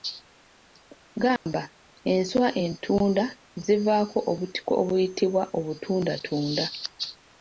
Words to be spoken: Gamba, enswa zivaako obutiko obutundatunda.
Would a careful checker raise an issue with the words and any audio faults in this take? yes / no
yes